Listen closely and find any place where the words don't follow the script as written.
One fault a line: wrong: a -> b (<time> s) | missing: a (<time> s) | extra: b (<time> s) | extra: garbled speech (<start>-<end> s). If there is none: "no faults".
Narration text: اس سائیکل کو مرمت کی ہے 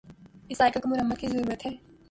extra: ضرورت (1.3 s)